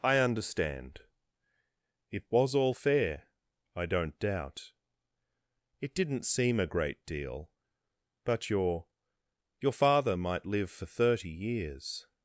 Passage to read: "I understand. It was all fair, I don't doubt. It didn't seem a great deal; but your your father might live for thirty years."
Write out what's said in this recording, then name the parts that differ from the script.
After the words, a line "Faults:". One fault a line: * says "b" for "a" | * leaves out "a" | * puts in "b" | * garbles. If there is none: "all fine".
"I understand. It was all fair, I don't doubt. It didn't seem a great deal; but your your father might live for thirty years."
Faults:
all fine